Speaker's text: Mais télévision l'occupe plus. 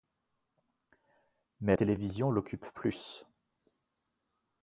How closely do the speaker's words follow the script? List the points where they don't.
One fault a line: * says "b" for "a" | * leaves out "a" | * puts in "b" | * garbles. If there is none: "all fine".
all fine